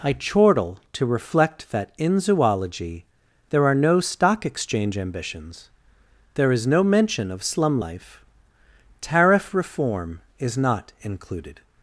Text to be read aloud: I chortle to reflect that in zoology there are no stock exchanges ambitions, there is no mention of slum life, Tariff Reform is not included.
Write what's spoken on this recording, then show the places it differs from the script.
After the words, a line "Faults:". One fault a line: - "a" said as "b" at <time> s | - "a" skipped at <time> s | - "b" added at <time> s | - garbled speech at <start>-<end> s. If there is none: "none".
I chortle to reflect that in zoology there are no stock exchange ambitions, there is no mention of slum life, Tariff Reform is not included.
Faults:
- "exchanges" said as "exchange" at 4.5 s